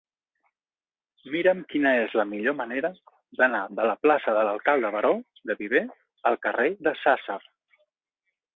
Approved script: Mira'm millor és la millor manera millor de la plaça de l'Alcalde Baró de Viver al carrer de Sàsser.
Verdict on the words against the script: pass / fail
fail